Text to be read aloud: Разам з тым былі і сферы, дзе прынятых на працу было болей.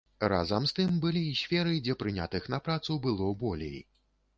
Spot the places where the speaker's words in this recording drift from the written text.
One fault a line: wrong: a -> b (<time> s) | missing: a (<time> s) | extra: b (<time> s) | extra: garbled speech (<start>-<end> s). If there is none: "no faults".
no faults